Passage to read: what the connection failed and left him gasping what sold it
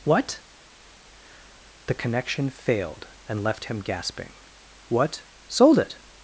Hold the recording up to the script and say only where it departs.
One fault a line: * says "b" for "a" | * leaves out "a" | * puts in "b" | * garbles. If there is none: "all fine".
all fine